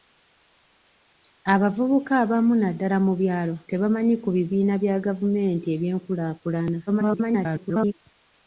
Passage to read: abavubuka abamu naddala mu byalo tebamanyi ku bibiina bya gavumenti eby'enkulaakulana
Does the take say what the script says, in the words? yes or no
no